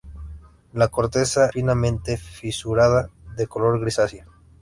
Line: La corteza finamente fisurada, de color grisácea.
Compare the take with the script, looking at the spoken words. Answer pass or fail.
pass